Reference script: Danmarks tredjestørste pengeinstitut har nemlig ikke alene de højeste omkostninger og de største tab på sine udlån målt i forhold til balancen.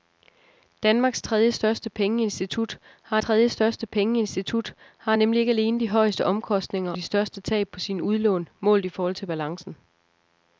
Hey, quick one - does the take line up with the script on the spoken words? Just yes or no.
no